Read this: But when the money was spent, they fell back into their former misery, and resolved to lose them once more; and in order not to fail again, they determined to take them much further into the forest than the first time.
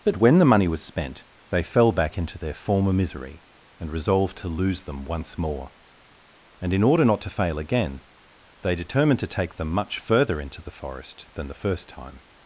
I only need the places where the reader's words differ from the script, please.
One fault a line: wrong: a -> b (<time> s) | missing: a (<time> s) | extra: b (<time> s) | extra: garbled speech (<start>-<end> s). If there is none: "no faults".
no faults